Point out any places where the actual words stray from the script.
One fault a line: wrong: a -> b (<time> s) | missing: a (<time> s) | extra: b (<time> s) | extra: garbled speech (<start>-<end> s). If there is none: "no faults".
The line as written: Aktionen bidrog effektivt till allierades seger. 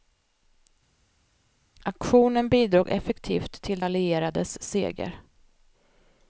no faults